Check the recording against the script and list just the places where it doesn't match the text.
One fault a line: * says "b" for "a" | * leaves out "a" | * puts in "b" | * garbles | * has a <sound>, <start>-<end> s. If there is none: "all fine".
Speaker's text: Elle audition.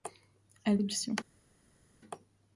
all fine